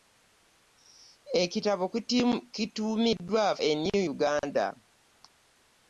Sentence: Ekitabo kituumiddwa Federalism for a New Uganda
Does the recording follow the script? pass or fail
fail